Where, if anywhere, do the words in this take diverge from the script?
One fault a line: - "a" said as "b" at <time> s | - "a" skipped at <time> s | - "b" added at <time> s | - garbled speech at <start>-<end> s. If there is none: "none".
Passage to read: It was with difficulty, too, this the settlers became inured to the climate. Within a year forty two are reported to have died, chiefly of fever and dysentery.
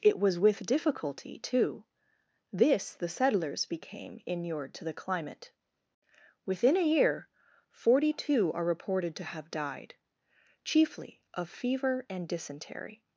none